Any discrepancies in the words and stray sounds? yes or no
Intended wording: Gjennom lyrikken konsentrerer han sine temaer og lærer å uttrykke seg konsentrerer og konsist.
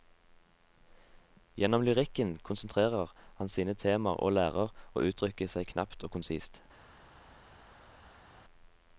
yes